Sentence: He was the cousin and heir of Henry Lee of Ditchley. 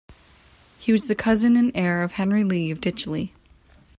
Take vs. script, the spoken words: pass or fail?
pass